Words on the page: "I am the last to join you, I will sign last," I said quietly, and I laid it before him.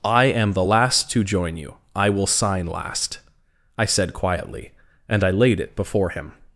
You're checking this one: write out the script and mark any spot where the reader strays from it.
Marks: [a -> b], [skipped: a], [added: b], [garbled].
"I am the last to join you, I will sign last," I said quietly, and I laid it before him.